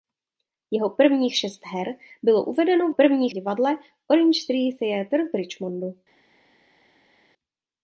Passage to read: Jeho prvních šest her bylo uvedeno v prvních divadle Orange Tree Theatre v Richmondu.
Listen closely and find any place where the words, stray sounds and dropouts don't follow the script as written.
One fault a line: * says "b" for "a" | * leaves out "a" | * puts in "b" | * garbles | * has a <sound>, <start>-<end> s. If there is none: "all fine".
all fine